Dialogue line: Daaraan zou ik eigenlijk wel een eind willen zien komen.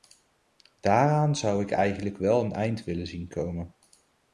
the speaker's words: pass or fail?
pass